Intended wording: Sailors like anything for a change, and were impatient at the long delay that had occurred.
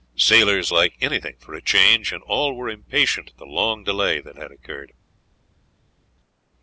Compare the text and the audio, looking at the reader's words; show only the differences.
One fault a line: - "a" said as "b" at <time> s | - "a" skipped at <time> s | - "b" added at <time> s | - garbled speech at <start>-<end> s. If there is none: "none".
- "all" added at 2.3 s